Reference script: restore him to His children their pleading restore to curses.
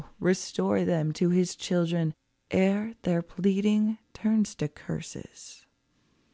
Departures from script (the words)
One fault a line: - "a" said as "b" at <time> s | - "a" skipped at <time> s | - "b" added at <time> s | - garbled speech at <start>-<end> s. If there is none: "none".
- "him" said as "them" at 0.8 s
- "ere" added at 2.5 s
- "restore" said as "turns" at 4.1 s